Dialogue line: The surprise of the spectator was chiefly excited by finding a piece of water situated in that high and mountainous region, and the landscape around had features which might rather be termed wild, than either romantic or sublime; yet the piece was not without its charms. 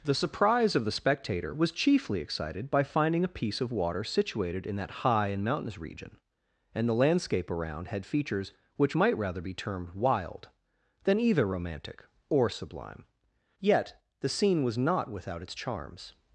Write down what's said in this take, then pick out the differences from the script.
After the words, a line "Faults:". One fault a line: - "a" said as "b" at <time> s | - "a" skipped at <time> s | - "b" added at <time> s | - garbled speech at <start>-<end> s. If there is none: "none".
The surprise of the spectator was chiefly excited by finding a piece of water situated in that high and mountainous region, and the landscape around had features which might rather be termed wild, than either romantic or sublime; yet the scene was not without its charms.
Faults:
- "piece" said as "scene" at 14.3 s